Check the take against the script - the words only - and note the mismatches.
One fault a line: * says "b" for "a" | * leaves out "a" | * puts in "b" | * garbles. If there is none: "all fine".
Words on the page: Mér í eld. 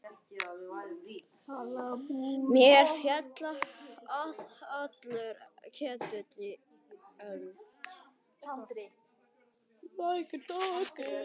* puts in "féll allur ketill"